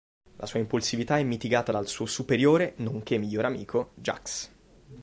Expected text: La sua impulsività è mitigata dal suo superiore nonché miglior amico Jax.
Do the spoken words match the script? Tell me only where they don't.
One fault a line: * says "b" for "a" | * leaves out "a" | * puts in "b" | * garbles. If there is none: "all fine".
all fine